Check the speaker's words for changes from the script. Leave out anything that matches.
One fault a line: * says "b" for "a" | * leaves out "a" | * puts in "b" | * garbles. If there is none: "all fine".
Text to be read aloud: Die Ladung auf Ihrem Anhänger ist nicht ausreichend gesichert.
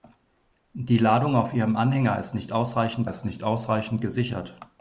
* puts in "ist nicht ausreichend"